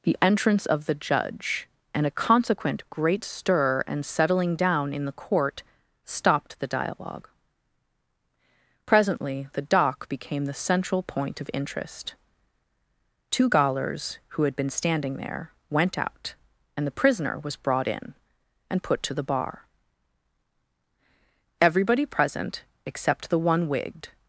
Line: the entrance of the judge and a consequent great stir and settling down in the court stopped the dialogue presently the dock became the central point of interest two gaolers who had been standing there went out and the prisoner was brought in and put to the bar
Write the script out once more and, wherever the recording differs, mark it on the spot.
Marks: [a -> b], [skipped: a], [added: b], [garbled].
the entrance of the judge and a consequent great stir and settling down in the court stopped the dialogue presently the dock became the central point of interest two gaolers who had been standing there went out and the prisoner was brought in and put to the bar [added: everybody present except the one wigged]